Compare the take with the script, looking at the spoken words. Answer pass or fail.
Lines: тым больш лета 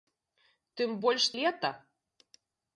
pass